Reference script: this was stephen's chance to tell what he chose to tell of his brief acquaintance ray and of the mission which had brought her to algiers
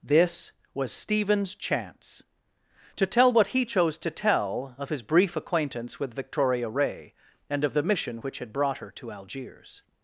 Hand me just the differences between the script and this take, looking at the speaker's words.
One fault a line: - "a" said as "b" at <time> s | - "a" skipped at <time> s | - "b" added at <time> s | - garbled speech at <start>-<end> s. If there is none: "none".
- "with victoria" added at 6.0 s